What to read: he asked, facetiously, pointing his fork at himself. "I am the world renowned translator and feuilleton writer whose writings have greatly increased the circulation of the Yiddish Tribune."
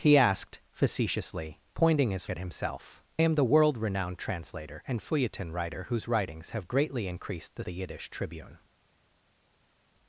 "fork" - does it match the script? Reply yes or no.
no